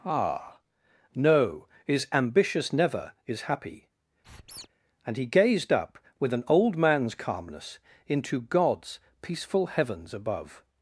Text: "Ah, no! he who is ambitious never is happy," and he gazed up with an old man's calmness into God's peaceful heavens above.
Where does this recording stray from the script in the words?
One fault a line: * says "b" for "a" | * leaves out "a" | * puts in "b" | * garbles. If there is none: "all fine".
* leaves out "he who"